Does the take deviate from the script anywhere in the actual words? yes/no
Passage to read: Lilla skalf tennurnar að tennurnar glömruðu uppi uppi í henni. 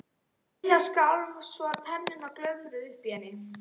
yes